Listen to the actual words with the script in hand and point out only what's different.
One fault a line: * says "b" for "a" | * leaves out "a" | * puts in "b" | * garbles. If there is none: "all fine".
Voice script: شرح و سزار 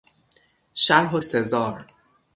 all fine